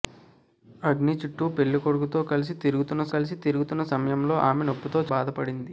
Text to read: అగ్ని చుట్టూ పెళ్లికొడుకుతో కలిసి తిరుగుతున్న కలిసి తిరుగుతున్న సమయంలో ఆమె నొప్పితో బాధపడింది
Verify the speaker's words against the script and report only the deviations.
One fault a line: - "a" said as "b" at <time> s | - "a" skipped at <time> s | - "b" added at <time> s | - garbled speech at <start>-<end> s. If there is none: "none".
none